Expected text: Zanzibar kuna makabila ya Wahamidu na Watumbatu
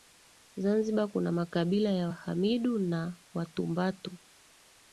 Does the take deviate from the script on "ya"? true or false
false